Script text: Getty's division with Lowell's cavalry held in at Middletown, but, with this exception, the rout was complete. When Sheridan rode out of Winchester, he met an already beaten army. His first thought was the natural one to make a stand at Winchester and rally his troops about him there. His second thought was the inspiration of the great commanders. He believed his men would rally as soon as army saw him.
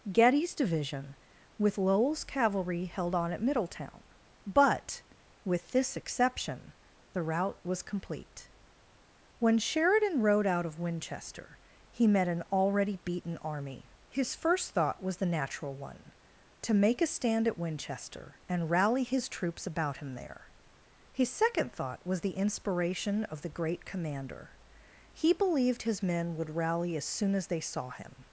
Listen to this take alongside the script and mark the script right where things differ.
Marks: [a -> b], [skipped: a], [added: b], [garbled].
Getty's division with Lowell's cavalry held [in -> on] at Middletown, but, with this exception, the rout was complete. When Sheridan rode out of Winchester, he met an already beaten army. His first thought was the natural one to make a stand at Winchester and rally his troops about him there. His second thought was the inspiration of the great [commanders. -> commander] He believed his men would rally as soon as [army -> they] saw him.